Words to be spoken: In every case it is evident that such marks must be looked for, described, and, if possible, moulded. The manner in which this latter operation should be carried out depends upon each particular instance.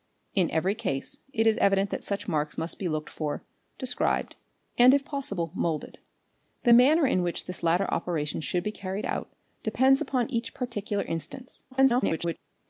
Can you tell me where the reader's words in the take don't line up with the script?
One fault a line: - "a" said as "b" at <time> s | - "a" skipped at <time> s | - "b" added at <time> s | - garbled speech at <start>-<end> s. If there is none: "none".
- garbled speech at 11.7-12.4 s